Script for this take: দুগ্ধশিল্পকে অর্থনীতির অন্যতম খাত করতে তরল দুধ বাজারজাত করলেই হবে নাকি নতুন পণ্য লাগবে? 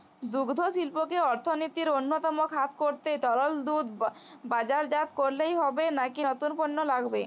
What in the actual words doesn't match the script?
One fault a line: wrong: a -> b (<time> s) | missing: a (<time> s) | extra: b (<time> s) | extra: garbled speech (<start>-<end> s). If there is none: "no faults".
no faults